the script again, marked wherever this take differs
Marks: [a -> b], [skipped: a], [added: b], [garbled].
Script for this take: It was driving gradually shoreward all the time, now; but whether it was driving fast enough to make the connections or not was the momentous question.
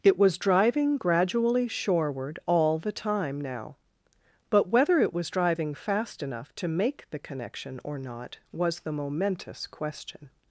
It was driving gradually shoreward all the time, now; but whether it was driving fast enough to make the [connections -> connection] or not was the momentous question.